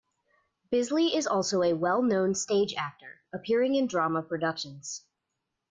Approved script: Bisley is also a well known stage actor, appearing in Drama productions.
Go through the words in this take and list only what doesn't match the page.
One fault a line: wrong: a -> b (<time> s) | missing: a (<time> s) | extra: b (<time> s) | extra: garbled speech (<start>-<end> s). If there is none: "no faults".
no faults